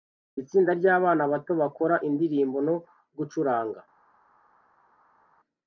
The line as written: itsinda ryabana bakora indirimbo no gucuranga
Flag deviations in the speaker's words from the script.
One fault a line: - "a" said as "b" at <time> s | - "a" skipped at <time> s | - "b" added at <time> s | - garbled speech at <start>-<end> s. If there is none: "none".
- "bato" added at 1.3 s